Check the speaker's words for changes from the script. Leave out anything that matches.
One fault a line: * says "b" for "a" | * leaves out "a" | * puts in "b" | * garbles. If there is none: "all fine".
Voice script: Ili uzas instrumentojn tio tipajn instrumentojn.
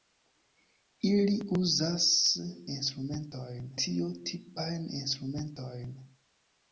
all fine